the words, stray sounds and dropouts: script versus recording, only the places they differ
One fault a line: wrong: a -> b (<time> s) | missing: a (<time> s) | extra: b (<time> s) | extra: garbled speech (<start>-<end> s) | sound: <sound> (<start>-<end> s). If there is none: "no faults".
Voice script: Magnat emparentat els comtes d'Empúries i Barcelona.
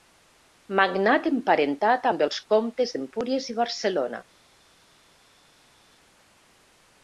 extra: amb (2.1 s)